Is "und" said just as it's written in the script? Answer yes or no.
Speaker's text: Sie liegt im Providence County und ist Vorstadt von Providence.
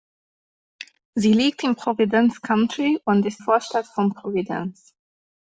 yes